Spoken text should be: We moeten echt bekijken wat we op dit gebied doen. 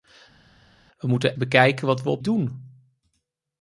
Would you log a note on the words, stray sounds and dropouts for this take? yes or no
yes